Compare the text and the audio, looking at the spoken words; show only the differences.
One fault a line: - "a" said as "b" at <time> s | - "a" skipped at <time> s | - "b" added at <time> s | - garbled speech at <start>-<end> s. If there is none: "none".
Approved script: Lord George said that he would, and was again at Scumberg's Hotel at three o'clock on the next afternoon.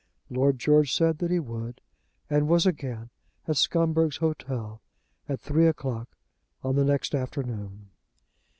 none